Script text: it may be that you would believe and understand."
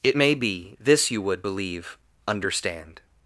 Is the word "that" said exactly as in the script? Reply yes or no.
no